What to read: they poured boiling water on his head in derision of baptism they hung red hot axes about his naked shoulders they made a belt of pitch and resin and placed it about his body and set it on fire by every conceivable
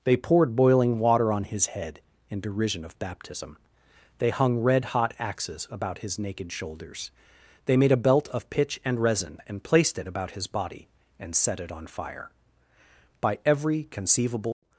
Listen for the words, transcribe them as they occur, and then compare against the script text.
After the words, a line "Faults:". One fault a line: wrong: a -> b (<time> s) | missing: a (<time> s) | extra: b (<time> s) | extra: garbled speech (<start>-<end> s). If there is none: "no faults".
they poured boiling water on his head in derision of baptism they hung red hot axes about his naked shoulders they made a belt of pitch and resin and placed it about his body and set it on fire by every conceivable
Faults:
no faults